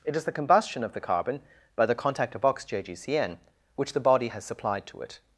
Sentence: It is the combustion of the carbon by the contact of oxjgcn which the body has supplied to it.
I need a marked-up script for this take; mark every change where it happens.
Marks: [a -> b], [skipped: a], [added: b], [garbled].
It is the combustion of the carbon by the contact of oxjgcn which the body has supplied to it.